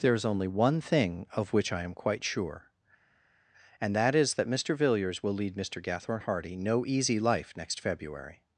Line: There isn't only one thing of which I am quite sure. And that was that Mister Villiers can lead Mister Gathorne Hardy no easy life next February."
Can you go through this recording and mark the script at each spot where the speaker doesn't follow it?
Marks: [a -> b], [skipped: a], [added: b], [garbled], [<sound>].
There [isn't -> is] only one thing of which I am quite sure. And that [was -> is] that Mister Villiers [can -> will] lead Mister Gathorne Hardy no easy life next February."